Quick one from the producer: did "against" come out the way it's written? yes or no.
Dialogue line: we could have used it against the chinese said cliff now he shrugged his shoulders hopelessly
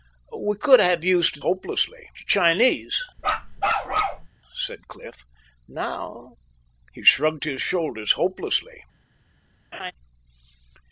no